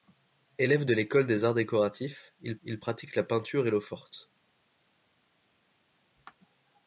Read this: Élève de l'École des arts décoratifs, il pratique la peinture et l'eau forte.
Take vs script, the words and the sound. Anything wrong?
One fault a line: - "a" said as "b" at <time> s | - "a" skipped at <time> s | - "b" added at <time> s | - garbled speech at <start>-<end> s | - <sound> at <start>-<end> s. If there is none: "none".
- "il" added at 2.6 s